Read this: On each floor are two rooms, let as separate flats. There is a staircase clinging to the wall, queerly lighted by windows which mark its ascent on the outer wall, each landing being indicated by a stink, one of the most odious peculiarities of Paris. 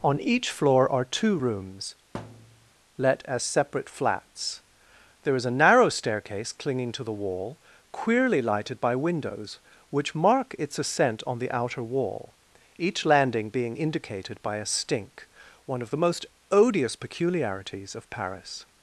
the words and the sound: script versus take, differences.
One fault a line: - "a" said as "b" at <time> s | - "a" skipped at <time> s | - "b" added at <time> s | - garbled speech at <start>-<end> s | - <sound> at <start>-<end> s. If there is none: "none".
- thud at 2.1-2.7 s
- "narrow" added at 5.5 s